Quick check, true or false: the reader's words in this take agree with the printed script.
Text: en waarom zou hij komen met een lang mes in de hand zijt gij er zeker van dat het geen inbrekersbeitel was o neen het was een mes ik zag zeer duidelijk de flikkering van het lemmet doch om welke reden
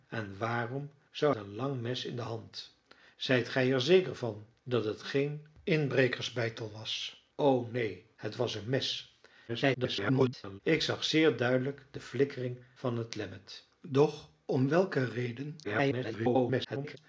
false